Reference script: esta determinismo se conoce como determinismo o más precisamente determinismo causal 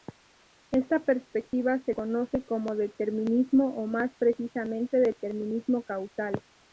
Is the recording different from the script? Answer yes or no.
yes